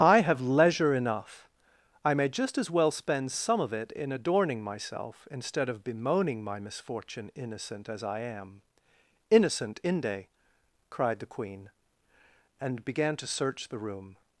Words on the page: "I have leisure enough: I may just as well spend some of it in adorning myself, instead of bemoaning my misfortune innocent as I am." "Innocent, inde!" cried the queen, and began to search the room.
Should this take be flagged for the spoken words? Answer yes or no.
no